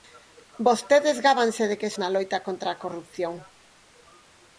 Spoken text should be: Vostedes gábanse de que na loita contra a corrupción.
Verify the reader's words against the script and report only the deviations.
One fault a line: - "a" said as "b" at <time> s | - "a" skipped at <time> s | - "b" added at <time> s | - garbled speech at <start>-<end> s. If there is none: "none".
none